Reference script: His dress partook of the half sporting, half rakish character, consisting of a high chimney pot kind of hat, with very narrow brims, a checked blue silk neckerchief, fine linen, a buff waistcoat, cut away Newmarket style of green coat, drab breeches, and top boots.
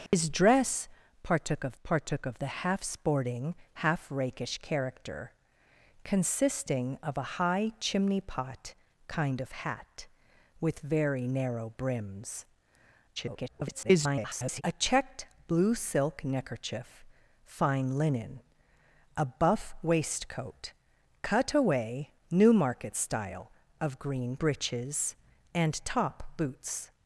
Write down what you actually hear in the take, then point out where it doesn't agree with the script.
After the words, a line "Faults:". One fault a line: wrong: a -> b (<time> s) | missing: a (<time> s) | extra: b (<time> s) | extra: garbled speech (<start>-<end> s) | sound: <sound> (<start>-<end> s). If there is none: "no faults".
His dress partook of partook of the half sporting, half rakish character, consisting of a high chimney pot kind of hat, with very narrow brims, [garbled] a checked blue silk neckerchief, fine linen, a buff waistcoat, cut away Newmarket style of green breeches, and top boots.
Faults:
sound: dropout (0.1-0.1 s)
extra: partook of (1.8 s)
extra: garbled speech (13.2-14.6 s)
missing: coat drab (24.4 s)